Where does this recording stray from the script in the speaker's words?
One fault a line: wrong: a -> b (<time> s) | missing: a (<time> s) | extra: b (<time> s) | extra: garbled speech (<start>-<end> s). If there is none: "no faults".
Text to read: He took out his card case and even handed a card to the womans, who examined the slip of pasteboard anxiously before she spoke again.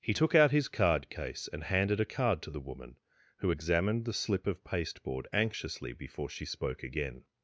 missing: even (1.6 s)
wrong: womans -> woman (2.6 s)